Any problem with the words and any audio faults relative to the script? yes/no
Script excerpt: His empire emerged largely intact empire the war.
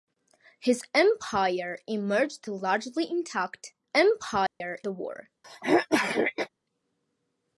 yes